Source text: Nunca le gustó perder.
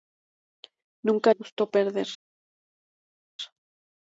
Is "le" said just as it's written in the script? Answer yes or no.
no